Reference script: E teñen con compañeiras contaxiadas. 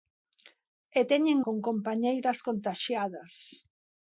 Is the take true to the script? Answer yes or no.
yes